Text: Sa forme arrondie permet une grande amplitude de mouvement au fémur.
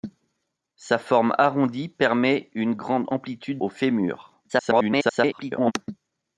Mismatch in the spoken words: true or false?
true